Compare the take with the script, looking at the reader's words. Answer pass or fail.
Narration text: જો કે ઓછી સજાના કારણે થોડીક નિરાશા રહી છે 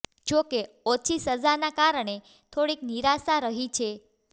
pass